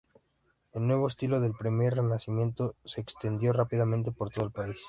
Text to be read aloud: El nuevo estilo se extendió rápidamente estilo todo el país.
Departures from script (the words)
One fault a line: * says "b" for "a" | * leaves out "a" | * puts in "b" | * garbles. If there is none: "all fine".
* puts in "del Primer Renacimiento"
* says "por" for "estilo"